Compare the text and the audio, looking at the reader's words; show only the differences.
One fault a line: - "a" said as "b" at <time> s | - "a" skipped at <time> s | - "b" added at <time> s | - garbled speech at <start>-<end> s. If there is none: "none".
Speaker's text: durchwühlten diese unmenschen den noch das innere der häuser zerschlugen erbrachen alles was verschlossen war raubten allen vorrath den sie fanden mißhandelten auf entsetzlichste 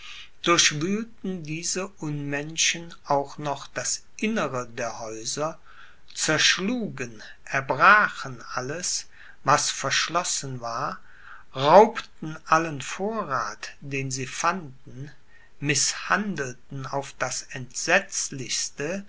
- "den" said as "auch" at 3.0 s
- "das" added at 17.2 s